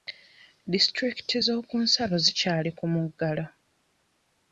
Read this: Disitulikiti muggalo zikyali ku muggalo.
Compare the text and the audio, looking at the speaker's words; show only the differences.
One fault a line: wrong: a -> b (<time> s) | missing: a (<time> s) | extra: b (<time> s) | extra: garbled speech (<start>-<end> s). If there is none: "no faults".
wrong: muggalo -> z'okunsalo (1.5 s)